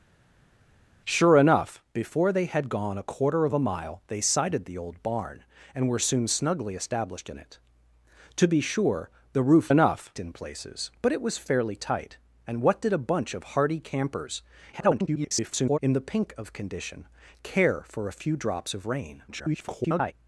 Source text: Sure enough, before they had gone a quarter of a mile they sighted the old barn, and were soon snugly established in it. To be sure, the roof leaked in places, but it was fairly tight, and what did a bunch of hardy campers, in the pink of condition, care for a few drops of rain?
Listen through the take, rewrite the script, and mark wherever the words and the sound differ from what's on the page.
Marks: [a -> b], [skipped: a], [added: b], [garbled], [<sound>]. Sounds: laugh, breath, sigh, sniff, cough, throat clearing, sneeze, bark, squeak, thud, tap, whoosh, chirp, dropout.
Sure enough, before they had gone a quarter of a mile they sighted the old barn, and were soon snugly established in it. To be sure, the roof [leaked -> enough] in places, but it was fairly tight, and what did a bunch of hardy campers, [garbled] in the pink of condition, care for a few drops of rain? [garbled]